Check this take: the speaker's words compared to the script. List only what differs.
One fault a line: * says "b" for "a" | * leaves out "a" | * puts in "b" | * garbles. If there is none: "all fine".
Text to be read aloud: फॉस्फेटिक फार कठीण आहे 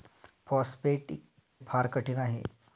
all fine